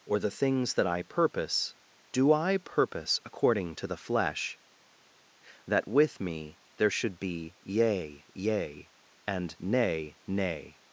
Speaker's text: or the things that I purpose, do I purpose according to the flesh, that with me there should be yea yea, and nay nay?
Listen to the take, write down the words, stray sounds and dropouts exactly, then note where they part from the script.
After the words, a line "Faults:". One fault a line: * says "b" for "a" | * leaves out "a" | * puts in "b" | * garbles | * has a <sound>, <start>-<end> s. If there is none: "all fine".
or the things that I purpose, do I purpose according to the flesh, that with me there should be yea yea, and nay nay?
Faults:
all fine